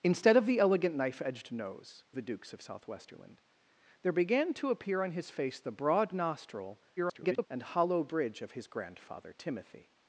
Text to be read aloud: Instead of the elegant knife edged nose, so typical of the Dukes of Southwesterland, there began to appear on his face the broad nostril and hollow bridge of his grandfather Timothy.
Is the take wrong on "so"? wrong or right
wrong